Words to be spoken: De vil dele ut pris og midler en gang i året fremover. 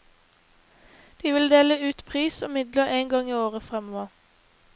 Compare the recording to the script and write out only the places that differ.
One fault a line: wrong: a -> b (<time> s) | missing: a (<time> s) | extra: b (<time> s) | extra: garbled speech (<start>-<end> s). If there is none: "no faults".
no faults